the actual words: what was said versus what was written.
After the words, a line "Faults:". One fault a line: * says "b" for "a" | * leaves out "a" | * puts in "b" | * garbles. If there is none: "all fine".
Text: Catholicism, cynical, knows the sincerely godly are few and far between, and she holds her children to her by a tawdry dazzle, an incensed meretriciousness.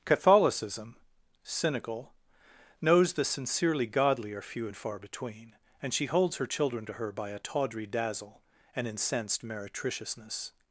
Catholicism, cynical, knows the sincerely godly are few and far between, and she holds her children to her by a tawdry dazzle, an incensed meretriciousness.
Faults:
all fine